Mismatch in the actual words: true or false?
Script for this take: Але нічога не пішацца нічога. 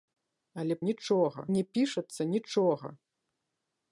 false